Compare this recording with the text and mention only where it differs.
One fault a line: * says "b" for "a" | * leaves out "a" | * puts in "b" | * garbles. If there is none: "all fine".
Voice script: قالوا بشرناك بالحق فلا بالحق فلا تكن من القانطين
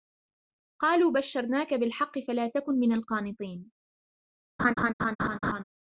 * leaves out "بالحق فلا"